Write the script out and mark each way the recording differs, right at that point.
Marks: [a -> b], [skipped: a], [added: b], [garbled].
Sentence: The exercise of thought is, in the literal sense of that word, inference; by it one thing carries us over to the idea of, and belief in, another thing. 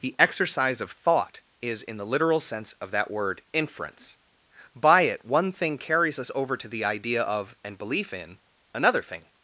The exercise of thought is, in the literal sense of that word, inference; by it one thing carries us over to the idea of, and belief in, another thing.